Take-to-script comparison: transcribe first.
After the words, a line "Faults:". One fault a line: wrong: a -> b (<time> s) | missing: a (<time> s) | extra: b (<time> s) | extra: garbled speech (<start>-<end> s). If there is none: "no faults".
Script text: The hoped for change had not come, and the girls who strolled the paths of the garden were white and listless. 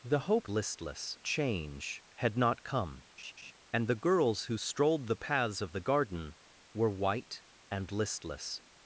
The hoped listless change had not come, and the girls who strolled the paths of the garden were white and listless.
Faults:
wrong: for -> listless (0.5 s)